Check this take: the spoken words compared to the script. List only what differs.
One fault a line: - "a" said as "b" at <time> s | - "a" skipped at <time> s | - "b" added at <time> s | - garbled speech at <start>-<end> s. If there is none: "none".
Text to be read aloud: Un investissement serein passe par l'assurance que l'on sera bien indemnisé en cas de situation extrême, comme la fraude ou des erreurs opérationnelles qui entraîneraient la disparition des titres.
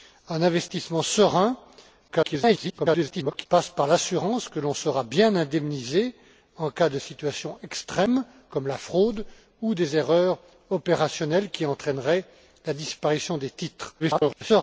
- garbled speech at 2.1-3.5 s
- garbled speech at 14.0-14.6 s